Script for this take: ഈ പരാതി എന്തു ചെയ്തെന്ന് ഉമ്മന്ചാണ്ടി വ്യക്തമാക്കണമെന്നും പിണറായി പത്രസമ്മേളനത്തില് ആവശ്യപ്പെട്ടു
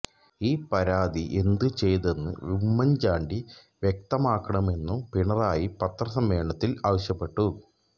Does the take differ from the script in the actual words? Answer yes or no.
no